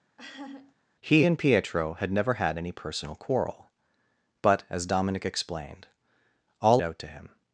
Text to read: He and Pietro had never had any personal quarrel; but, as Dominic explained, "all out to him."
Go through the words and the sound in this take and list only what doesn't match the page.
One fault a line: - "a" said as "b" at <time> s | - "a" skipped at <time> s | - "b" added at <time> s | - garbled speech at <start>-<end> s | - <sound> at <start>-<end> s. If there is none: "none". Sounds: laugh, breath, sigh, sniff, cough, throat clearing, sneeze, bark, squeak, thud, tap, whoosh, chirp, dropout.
- laugh at 0.2-0.8 s